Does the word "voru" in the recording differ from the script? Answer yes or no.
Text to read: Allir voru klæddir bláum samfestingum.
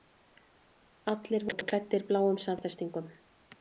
no